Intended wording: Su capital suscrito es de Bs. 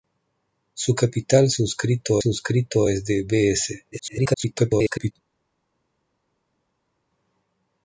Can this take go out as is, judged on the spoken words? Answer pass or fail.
fail